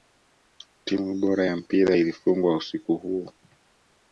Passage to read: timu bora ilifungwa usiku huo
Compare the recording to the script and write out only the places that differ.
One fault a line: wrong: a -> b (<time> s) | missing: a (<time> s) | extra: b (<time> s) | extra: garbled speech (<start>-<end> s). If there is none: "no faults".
extra: ya mpira (1.4 s)